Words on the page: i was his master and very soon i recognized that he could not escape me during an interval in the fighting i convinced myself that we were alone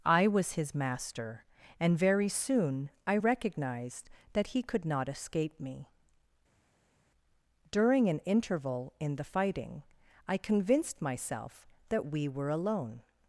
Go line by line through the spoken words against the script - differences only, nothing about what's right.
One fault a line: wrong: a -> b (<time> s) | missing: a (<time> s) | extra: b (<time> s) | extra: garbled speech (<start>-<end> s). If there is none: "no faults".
no faults